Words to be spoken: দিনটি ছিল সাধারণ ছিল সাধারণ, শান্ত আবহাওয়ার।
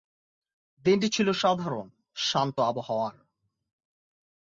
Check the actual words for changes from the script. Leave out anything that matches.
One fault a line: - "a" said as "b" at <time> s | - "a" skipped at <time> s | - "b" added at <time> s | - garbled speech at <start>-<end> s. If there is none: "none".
- "ছিল সাধারণ" skipped at 1.9 s